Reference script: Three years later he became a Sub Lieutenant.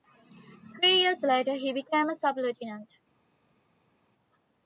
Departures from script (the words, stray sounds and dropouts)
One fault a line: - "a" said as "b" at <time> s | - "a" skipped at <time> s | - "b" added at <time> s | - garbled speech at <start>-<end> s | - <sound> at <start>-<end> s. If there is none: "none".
none